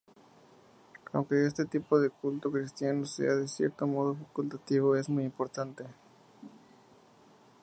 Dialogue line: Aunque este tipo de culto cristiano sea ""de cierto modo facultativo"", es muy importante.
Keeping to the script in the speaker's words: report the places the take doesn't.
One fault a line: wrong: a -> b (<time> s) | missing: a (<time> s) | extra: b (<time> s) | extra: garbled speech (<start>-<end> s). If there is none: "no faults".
no faults